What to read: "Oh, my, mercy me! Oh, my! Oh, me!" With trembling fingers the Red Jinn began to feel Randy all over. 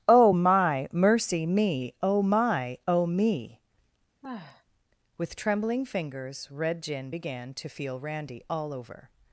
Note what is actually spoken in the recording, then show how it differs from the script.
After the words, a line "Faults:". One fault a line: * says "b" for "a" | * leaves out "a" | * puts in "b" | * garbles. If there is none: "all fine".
"Oh, my, mercy me! Oh, my! Oh, me!" With trembling fingers Red Jinn began to feel Randy all over.
Faults:
* leaves out "the"